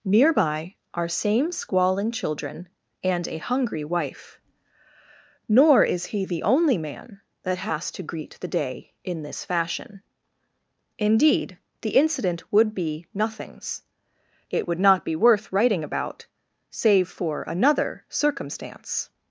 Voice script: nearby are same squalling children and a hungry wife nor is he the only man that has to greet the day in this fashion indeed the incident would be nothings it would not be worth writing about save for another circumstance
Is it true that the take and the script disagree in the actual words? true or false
false